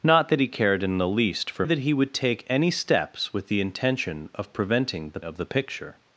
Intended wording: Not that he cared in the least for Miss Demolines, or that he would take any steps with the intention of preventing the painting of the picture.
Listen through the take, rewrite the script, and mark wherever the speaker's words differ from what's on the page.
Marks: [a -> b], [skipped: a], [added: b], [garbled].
Not that he cared in the least for [skipped: Miss Demolines, or] that he would take any steps with the intention of preventing the [skipped: painting] of the picture.